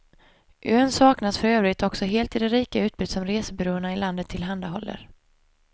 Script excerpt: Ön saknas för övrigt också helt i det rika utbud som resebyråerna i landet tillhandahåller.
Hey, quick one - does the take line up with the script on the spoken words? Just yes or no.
yes